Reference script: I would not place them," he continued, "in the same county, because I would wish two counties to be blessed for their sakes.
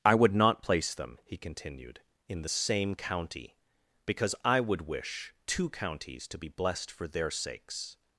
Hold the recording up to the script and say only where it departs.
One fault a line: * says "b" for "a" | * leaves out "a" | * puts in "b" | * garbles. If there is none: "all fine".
all fine